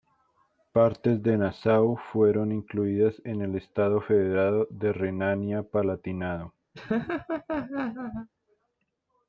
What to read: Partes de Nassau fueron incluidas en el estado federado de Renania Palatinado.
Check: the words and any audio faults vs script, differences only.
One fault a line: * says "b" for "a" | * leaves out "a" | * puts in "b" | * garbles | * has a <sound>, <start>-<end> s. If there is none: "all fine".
* has a laugh, 6.7-8.3 s